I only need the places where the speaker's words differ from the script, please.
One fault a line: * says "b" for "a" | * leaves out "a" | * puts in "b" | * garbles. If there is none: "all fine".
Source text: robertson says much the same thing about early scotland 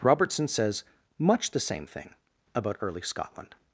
all fine